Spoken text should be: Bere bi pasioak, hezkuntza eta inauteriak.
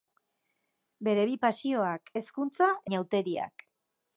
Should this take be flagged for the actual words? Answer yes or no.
yes